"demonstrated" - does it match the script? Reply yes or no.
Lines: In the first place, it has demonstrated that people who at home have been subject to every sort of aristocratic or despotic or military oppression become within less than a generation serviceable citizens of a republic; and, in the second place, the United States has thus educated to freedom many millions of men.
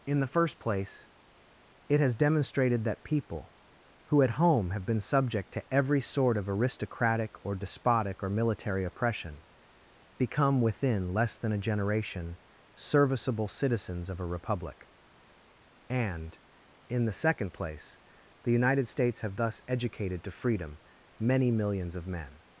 yes